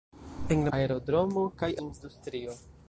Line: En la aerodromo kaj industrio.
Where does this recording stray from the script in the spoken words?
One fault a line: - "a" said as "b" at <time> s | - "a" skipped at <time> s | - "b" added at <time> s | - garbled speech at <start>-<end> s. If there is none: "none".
none